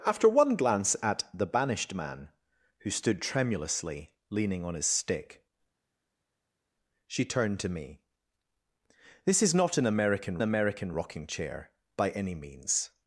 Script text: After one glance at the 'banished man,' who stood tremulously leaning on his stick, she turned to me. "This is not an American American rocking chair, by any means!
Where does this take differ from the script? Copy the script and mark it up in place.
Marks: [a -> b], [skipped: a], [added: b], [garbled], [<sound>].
After one glance at the 'banished man,' who stood tremulously leaning on his stick, she turned to me. "This is not an American American rocking chair, by any means!